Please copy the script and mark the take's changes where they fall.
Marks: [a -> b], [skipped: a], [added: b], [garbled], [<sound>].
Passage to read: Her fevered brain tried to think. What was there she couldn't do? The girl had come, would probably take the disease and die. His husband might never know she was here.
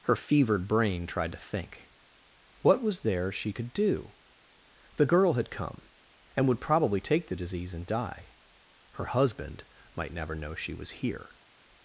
Her fevered brain tried to think. What was there she [couldn't -> could] do? The girl had come, [added: and] would probably take the disease and die. [His -> Her] husband might never know she was here.